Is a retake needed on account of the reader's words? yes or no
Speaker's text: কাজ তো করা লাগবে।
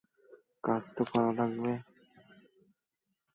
no